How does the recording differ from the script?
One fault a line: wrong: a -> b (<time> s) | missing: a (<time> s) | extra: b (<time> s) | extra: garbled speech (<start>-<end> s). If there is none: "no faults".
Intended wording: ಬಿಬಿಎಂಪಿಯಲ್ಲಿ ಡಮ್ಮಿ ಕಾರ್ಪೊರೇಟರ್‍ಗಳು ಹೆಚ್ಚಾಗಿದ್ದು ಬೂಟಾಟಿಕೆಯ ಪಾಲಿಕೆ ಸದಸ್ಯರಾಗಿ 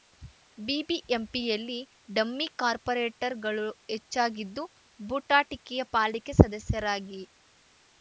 no faults